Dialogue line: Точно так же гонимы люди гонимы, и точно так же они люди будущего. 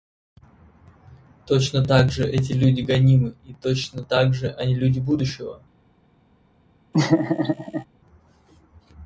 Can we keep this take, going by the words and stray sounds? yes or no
no